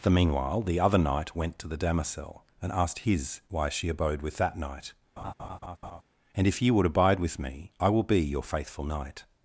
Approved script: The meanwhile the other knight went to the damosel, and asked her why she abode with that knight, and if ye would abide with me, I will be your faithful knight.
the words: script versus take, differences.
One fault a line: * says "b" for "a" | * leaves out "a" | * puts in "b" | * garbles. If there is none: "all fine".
* says "his" for "her"